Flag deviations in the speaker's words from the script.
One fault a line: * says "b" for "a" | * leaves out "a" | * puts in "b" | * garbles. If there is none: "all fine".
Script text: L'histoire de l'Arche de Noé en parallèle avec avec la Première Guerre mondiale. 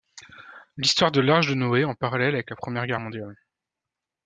* leaves out "avec"